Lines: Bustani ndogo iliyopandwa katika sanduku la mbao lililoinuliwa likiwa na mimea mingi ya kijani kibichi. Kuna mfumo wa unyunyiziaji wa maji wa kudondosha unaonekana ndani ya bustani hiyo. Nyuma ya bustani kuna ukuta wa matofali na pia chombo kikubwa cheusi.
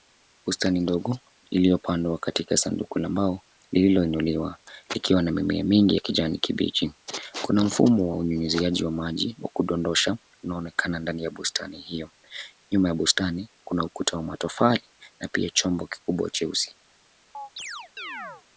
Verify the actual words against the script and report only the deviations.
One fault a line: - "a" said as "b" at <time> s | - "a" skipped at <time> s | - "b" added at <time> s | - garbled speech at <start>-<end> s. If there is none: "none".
none